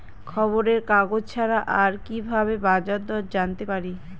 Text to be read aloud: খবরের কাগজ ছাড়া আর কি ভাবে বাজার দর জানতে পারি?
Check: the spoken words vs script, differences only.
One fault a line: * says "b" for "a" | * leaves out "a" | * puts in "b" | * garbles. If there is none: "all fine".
all fine